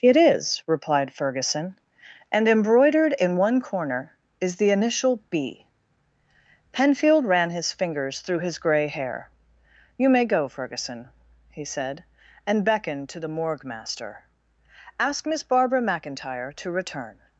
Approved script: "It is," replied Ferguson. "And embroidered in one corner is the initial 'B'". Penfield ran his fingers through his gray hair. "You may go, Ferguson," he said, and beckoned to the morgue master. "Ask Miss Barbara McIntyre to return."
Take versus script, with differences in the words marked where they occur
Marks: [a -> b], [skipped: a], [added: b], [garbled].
"It is," replied Ferguson. "And embroidered in one corner is the initial 'B'". Penfield ran his fingers through his gray hair. "You may go, Ferguson," he said, and beckoned to the morgue master. "Ask Miss Barbara McIntyre to return."